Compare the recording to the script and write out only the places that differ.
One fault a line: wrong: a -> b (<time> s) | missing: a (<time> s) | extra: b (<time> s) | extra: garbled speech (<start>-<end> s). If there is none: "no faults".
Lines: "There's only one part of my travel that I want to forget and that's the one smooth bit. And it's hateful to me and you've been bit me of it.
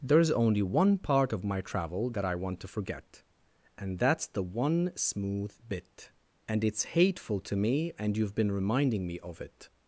wrong: bit -> reminding (8.5 s)